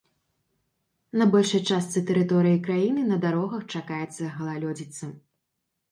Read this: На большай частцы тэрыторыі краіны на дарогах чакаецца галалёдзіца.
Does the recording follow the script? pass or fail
pass